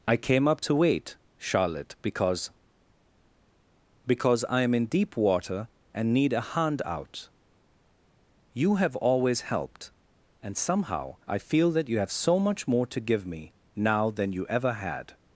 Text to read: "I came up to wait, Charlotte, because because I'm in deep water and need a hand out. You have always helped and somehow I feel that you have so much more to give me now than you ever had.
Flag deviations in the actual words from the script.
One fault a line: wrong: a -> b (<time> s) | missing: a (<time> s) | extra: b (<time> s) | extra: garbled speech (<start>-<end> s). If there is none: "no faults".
no faults